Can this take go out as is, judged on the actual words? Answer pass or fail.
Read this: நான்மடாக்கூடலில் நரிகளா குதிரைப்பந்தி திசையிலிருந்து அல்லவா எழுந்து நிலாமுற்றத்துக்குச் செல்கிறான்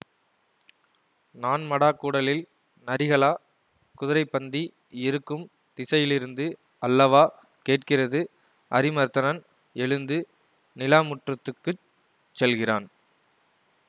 fail